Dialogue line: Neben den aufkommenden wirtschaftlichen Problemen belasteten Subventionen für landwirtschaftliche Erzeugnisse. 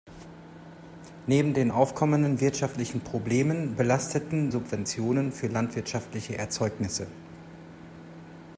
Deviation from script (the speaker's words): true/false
false